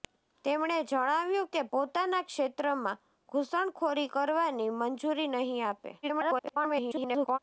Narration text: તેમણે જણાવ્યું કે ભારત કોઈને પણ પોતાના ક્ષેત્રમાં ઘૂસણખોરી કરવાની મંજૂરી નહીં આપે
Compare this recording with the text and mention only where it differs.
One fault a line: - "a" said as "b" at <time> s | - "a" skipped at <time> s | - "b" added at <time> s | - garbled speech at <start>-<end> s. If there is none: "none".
- "ભારત કોઈને પણ" skipped at 1.6 s
- garbled speech at 6.0-7.4 s